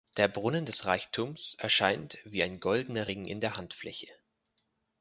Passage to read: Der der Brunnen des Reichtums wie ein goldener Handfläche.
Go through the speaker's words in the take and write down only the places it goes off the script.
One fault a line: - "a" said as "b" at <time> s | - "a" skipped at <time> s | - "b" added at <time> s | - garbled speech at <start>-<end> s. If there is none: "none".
- "der" skipped at 0.3 s
- "erscheint" added at 1.6 s
- "Ring in der" added at 3.1 s